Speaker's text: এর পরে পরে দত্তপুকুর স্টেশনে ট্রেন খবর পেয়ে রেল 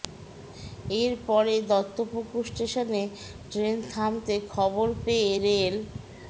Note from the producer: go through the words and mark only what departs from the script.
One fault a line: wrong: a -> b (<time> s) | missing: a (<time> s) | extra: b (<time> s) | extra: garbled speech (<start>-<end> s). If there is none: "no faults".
missing: পরে (1.6 s)
extra: থামতে (3.9 s)